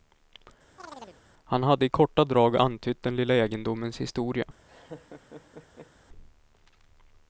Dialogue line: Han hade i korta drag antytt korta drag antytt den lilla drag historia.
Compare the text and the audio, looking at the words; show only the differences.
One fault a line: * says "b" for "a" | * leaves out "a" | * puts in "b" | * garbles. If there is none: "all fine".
* leaves out "korta drag antytt"
* says "egendomens" for "drag"